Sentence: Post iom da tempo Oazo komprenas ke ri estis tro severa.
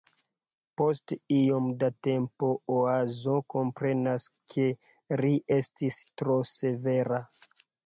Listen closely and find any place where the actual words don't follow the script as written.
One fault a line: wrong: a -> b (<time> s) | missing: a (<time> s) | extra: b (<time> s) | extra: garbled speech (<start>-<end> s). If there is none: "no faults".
no faults